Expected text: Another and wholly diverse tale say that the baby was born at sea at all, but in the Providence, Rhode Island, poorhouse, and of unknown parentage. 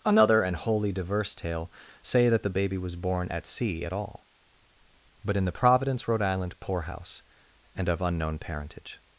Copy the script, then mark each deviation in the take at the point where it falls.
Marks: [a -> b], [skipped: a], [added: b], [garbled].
Another and wholly diverse tale say that the baby was born at sea at all, but in the Providence, Rhode Island, poorhouse, and of unknown parentage.